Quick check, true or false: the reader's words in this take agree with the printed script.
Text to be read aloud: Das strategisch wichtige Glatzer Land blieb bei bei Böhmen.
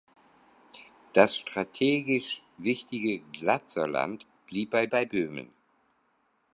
true